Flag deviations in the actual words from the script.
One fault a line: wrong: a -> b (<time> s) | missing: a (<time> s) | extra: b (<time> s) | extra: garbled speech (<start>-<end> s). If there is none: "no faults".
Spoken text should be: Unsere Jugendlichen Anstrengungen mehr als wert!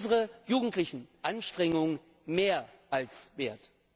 no faults